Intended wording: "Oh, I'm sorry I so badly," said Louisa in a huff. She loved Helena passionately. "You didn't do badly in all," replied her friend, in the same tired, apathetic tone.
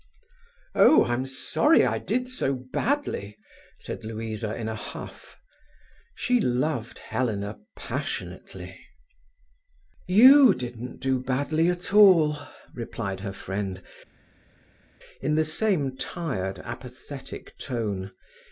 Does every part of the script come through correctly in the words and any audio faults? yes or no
no